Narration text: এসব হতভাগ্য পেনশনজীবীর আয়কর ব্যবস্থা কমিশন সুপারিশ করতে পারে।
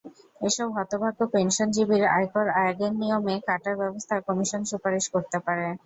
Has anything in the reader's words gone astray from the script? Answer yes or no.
yes